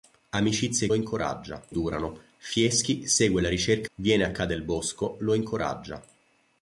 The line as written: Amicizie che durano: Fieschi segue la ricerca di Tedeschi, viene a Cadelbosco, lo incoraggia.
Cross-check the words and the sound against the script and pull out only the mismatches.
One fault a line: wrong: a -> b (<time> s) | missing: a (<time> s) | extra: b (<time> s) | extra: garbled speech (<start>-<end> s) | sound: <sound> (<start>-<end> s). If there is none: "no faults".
wrong: che -> incoraggia (0.9 s)
missing: di Tedeschi (3.9 s)